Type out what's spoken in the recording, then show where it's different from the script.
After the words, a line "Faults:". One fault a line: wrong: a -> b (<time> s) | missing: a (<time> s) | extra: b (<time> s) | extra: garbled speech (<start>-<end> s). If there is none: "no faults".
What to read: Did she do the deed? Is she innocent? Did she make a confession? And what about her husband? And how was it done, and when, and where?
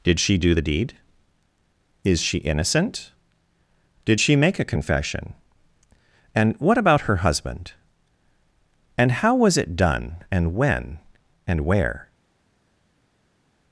Did she do the deed? Is she innocent? Did she make a confession? And what about her husband? And how was it done, and when, and where?
Faults:
no faults